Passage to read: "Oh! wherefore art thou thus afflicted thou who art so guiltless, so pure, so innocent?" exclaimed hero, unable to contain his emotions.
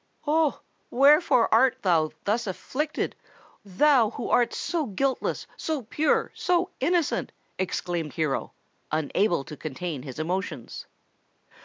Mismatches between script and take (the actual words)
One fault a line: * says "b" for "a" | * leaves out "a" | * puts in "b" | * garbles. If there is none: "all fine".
all fine